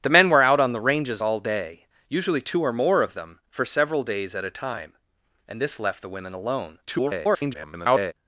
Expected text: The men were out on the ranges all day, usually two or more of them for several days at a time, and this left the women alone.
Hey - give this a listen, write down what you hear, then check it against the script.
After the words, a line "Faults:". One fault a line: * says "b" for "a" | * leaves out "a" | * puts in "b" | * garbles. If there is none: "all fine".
The men were out on the ranges all day, usually two or more of them for several days at a time, and this left the women alone. [garbled]
Faults:
* garbles